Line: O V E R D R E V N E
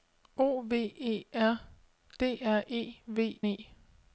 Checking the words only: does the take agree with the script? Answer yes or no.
no